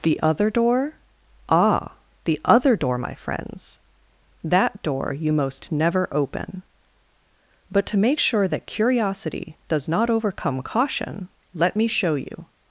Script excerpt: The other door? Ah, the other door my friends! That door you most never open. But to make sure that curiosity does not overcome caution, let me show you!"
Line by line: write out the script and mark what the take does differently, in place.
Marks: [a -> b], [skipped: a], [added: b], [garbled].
The other door? Ah, the other door my friends! That door you most never open. But to make sure that curiosity does not overcome caution, let me show you!"